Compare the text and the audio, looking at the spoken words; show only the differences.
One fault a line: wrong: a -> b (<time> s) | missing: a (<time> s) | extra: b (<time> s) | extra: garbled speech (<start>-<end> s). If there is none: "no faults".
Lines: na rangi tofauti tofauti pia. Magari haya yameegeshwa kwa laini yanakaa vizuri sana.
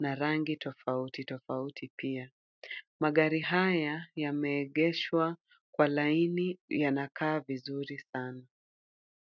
no faults